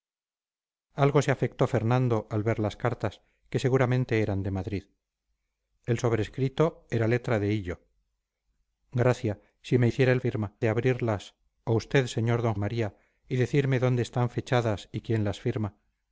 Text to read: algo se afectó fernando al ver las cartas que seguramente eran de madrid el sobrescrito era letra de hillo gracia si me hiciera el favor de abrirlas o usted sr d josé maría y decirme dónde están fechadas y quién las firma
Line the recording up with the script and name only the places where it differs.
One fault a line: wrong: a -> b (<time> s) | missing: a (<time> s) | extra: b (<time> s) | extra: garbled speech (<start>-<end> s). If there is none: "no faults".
wrong: favor -> firma (10.2 s)
missing: josé (12.5 s)